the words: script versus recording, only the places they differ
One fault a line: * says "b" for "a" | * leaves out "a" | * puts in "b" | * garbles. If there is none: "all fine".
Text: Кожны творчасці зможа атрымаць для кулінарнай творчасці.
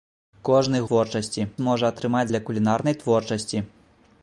all fine